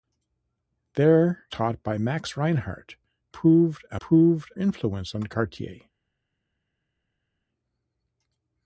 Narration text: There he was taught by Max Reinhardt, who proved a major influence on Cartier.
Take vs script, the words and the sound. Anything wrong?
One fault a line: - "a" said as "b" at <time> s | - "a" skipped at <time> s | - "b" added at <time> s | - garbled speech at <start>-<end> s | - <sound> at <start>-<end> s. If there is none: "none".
- "he was" skipped at 1.4 s
- "who" skipped at 3.0 s
- "major" said as "proved" at 4.0 s